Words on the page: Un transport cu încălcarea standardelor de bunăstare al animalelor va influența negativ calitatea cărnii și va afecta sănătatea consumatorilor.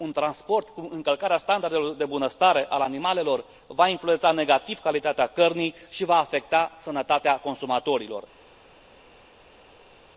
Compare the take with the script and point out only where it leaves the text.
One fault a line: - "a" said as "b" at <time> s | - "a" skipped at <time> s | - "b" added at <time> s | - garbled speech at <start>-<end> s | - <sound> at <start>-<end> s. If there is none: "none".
none